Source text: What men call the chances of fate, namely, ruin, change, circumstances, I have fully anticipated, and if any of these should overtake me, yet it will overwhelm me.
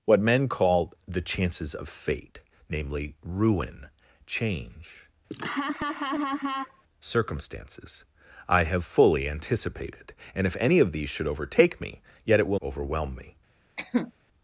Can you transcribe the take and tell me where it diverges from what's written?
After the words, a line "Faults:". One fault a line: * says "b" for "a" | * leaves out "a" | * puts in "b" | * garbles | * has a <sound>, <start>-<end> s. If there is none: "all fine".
What men call the chances of fate, namely, ruin, change, circumstances, I have fully anticipated, and if any of these should overtake me, yet it will overwhelm me.
Faults:
* has a laugh, 5.3-6.8 s
* has a cough, 13.8-14.1 s